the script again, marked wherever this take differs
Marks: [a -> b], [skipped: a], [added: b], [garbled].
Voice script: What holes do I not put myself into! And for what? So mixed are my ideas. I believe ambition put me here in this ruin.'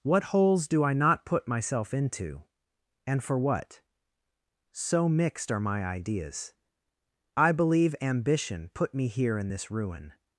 What holes do I not put myself into! And for what? So mixed are my ideas. I believe ambition put me here in this ruin.'